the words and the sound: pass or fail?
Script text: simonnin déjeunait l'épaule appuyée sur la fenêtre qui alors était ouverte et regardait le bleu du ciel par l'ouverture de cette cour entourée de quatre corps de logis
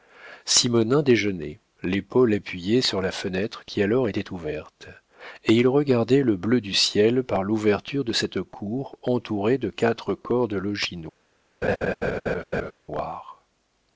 fail